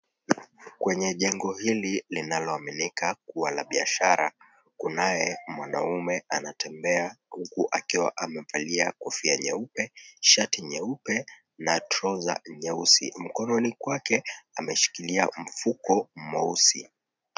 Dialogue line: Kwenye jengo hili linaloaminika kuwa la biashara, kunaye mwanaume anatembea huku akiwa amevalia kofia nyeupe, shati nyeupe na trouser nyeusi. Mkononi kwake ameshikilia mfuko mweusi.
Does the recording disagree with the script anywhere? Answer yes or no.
no